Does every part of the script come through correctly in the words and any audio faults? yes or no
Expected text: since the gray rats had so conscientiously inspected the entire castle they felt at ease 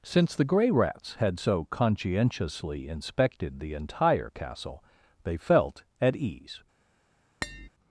no